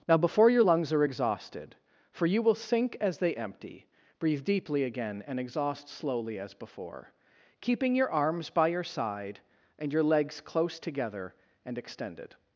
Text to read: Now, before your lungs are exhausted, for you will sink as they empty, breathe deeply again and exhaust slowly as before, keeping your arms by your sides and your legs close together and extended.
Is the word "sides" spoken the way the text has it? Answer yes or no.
no